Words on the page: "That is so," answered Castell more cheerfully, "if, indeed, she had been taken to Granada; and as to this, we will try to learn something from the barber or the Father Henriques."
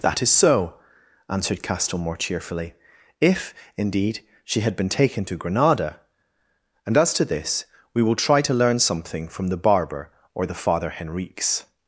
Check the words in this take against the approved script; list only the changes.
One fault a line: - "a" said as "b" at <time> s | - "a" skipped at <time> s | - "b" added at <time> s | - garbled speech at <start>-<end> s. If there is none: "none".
none